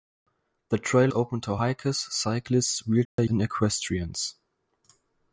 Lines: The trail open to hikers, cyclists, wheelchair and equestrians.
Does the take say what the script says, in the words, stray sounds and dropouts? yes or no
no